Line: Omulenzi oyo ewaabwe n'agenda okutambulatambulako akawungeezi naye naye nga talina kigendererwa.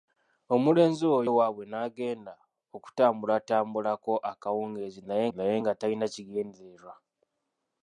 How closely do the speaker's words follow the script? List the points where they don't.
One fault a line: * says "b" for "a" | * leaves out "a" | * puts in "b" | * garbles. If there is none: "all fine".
all fine